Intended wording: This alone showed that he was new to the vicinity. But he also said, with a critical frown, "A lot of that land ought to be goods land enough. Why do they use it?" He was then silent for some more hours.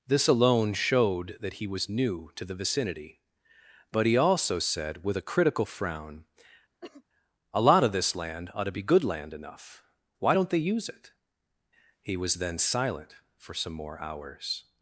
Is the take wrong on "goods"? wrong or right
wrong